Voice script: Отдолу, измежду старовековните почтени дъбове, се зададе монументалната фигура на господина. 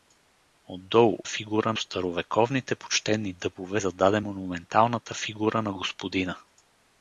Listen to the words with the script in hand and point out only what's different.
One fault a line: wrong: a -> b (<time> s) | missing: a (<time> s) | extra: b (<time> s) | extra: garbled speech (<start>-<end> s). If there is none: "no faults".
wrong: измежду -> фигура (1.2 s)
missing: се (3.8 s)